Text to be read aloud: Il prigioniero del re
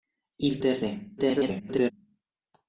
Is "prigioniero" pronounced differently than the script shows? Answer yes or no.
yes